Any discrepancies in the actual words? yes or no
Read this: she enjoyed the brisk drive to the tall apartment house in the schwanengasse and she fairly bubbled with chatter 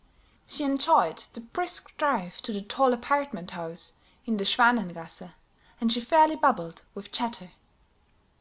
no